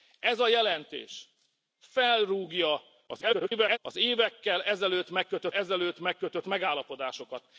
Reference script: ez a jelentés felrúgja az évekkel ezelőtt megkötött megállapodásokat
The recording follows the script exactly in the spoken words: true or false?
false